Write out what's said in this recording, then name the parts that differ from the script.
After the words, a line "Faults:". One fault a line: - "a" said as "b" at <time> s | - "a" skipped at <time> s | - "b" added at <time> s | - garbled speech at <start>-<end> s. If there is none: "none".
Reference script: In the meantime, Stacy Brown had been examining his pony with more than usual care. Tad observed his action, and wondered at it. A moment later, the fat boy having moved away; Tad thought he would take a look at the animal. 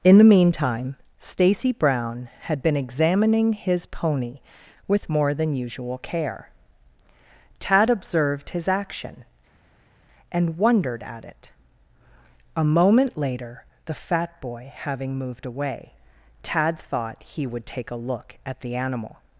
In the meantime, Stacy Brown had been examining his pony with more than usual care. Tad observed his action, and wondered at it. A moment later, the fat boy having moved away; Tad thought he would take a look at the animal.
Faults:
none